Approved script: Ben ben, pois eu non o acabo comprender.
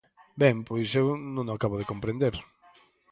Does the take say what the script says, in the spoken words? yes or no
no